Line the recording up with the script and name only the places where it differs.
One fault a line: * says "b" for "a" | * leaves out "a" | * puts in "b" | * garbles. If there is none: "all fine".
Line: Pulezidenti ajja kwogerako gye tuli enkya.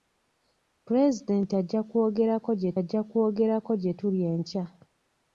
* puts in "ajja kwogerako gye"